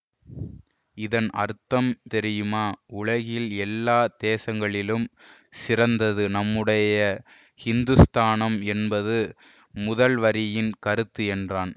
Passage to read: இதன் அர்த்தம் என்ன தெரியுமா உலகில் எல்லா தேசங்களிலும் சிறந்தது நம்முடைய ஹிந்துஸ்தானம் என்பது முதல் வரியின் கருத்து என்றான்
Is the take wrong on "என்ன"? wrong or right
wrong